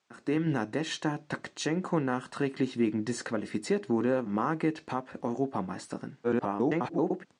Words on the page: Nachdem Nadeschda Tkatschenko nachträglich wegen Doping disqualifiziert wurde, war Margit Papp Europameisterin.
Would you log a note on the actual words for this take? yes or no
yes